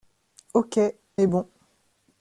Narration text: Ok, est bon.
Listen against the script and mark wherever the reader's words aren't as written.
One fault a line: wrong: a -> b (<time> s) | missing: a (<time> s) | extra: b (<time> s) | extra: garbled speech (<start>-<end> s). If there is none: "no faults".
no faults